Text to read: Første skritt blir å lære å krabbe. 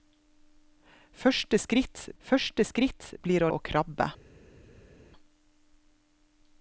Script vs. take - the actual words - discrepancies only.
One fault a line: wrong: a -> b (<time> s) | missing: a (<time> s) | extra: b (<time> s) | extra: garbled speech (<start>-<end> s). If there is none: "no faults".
extra: første skritt (2.2 s)
missing: lære (3.5 s)